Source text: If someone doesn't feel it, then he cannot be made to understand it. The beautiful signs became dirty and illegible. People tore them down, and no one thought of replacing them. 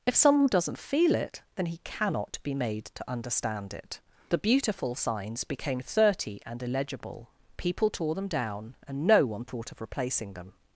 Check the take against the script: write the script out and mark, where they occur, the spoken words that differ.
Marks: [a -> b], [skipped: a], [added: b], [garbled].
If someone doesn't feel it, then he cannot be made to understand it. The beautiful signs became [dirty -> thirty] and illegible. People tore them down, and no one thought of replacing them.